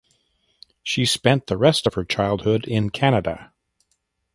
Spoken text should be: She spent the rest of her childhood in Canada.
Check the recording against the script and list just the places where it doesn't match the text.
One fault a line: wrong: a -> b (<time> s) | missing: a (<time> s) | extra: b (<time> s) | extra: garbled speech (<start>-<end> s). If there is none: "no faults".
no faults